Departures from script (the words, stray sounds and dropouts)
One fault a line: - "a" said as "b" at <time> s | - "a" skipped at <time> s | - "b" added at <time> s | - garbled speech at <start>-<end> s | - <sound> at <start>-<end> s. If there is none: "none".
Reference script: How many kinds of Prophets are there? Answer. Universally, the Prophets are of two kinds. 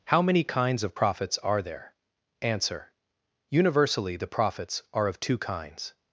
none